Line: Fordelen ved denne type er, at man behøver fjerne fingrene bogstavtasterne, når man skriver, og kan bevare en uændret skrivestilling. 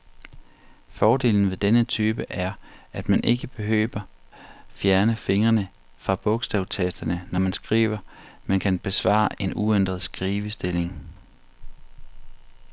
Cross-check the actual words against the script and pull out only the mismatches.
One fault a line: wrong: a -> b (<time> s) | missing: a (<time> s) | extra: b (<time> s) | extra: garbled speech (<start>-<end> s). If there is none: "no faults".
extra: ikke (3.2 s)
extra: fra (6.0 s)
wrong: og -> men (8.5 s)